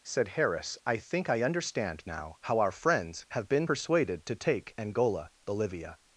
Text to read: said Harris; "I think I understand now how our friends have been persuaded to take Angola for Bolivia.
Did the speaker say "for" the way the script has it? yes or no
no